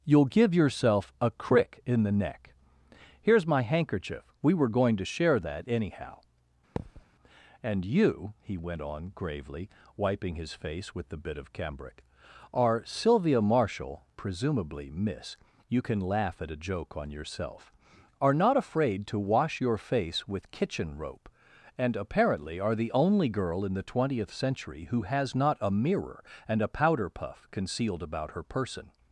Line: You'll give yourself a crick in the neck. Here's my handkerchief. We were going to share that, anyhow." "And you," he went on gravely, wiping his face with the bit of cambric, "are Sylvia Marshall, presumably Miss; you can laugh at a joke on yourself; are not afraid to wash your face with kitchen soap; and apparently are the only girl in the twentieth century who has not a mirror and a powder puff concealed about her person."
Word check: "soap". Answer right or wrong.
wrong